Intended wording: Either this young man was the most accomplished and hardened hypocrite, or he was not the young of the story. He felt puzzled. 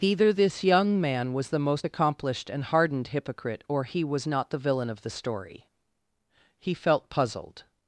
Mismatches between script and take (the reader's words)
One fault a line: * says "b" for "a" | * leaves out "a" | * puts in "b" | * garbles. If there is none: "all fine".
* says "villain" for "young"